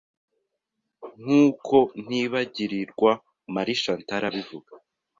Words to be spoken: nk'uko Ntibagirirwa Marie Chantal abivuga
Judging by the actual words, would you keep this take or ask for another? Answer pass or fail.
pass